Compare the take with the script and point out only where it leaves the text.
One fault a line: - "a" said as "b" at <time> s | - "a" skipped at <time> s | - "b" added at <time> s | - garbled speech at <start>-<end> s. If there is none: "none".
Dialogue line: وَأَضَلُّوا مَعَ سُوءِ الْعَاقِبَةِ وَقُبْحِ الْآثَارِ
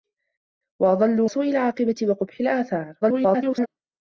- "مَعَ" skipped at 1.3 s
- garbled speech at 3.0-3.7 s